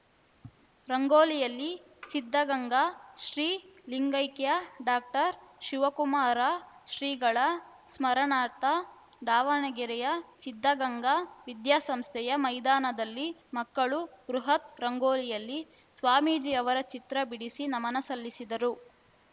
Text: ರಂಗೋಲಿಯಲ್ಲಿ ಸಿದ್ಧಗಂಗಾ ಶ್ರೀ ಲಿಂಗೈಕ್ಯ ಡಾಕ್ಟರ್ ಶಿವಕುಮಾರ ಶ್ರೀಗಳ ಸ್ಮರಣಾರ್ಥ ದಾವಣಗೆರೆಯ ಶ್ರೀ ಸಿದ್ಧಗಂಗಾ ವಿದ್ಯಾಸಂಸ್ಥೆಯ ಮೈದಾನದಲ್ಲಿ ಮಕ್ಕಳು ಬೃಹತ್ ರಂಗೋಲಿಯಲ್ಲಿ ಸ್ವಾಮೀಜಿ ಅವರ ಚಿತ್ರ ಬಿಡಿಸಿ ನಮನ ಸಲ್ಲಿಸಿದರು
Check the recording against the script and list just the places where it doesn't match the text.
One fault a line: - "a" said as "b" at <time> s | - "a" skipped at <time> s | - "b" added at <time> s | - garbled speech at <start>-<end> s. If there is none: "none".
- "ಶ್ರೀ" skipped at 10.1 s